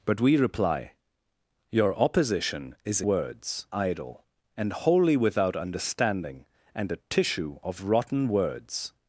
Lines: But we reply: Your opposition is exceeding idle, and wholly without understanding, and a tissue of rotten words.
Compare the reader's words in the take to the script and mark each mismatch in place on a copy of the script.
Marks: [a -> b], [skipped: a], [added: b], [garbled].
But we reply: Your opposition is [exceeding -> words] idle, and wholly without understanding, and a tissue of rotten words.